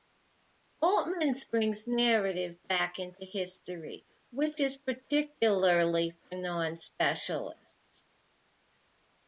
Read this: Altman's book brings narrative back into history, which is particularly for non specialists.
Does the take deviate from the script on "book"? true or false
true